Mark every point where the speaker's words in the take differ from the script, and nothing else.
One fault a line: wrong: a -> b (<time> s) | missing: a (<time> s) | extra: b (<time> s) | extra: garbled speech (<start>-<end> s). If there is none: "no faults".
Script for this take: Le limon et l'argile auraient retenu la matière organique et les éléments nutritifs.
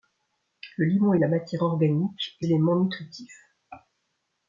missing: l'argile auraient retenu (1.2 s)
missing: les (2.5 s)